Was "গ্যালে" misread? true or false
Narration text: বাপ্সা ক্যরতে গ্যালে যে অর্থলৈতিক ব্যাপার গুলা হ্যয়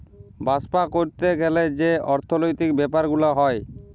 false